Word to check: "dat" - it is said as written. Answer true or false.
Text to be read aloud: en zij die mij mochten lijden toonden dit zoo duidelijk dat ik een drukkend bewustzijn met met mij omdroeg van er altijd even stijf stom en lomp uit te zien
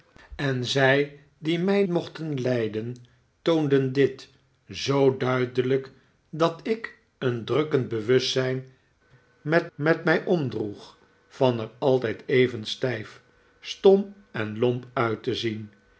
true